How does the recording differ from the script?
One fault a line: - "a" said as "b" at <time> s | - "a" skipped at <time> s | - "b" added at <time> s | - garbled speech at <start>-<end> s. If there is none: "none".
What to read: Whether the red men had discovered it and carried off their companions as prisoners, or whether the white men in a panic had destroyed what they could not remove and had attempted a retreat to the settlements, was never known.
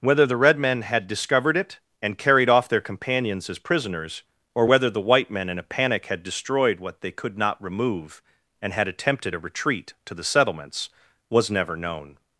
none